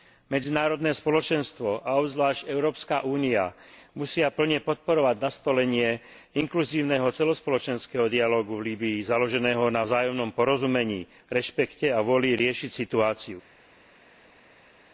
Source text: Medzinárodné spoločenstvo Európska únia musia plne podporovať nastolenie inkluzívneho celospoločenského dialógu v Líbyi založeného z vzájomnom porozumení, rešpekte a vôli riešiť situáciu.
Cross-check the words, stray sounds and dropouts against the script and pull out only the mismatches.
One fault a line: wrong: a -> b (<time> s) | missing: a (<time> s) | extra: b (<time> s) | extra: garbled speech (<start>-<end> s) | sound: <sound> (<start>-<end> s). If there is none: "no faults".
extra: a obzvlášť (1.8 s)
wrong: z -> na (9.7 s)